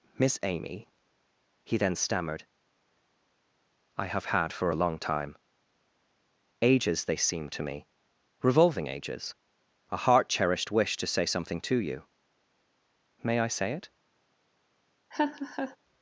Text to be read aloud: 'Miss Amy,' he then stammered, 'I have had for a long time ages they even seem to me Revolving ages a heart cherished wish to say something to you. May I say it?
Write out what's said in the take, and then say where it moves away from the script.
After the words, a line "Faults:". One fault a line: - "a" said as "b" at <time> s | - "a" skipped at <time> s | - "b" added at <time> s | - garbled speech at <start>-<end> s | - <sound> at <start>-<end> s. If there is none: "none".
'Miss Amy,' he then stammered, 'I have had for a long time ages they seem to me Revolving ages a heart cherished wish to say something to you. May I say it?
Faults:
- "even" skipped at 7.2 s
- laugh at 15.1-15.8 s